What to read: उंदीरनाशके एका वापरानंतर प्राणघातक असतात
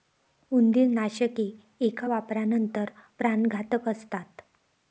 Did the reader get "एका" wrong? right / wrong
right